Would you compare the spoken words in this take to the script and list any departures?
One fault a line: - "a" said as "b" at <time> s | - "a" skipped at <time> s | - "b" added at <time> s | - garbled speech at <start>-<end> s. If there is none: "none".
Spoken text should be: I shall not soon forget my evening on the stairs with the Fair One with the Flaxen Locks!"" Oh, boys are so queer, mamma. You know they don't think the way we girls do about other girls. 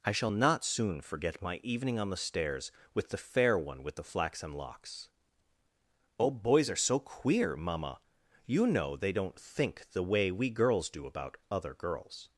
none